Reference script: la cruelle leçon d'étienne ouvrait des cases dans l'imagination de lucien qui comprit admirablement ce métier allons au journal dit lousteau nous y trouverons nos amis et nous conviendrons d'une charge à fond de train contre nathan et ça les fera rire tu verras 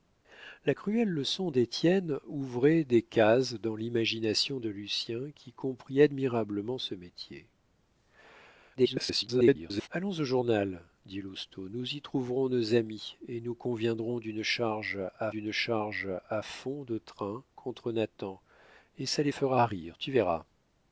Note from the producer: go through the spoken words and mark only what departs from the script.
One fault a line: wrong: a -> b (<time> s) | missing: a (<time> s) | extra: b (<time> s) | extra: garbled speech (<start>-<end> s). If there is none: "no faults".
extra: garbled speech (8.8-9.9 s)
extra: d'une charge à (15.3 s)